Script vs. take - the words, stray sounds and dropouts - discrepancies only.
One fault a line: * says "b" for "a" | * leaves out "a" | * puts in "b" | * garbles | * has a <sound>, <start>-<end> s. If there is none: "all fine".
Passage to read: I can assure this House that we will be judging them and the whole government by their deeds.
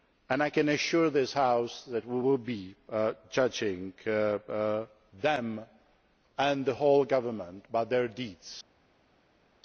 all fine